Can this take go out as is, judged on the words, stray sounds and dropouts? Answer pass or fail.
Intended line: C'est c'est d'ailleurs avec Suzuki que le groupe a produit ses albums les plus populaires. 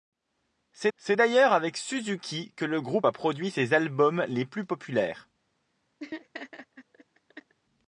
fail